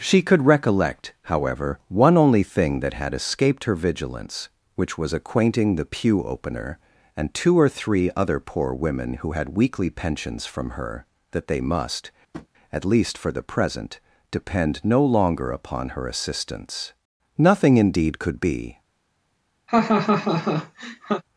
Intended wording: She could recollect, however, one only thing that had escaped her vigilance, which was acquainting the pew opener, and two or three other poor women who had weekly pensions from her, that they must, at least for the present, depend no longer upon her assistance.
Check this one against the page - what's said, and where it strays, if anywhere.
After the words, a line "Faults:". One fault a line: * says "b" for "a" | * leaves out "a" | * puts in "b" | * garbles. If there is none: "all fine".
She could recollect, however, one only thing that had escaped her vigilance, which was acquainting the pew opener, and two or three other poor women who had weekly pensions from her, that they must, at least for the present, depend no longer upon her assistance. Nothing indeed could be
Faults:
* puts in "Nothing indeed could be"